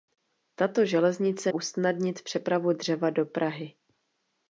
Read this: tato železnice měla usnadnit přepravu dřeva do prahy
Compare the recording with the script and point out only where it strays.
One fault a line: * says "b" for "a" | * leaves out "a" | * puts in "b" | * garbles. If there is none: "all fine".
* leaves out "měla"